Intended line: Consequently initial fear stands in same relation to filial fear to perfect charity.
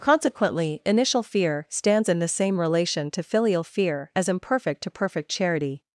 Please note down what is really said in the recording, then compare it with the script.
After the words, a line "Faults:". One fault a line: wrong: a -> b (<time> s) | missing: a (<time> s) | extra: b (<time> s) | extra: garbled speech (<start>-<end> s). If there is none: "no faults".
Consequently initial fear stands in the same relation to filial fear as imperfect to perfect charity.
Faults:
extra: the (2.2 s)
extra: as imperfect (4.1 s)